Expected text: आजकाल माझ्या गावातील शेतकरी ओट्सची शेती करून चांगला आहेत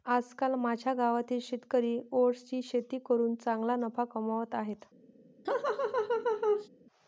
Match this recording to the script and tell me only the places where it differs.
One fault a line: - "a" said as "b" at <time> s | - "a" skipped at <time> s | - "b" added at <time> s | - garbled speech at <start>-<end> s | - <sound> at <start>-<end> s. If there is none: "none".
- "नफा कमावत" added at 3.8 s
- laugh at 5.4-6.7 s